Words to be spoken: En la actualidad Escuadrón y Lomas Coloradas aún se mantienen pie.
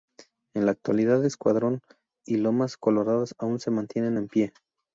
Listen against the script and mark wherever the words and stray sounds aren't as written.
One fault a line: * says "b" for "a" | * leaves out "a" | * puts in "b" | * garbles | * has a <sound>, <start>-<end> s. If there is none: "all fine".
* puts in "en"